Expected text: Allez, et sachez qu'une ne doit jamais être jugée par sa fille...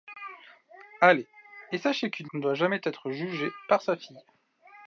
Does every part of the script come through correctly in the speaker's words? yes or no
yes